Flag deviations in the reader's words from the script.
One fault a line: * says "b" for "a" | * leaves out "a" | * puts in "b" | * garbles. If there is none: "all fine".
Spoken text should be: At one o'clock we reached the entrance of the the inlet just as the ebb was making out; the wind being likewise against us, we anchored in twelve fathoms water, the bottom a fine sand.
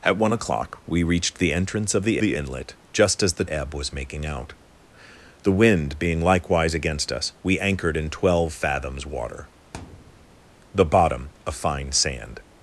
all fine